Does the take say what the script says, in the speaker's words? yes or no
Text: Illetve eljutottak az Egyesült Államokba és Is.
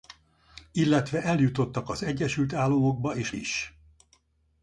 yes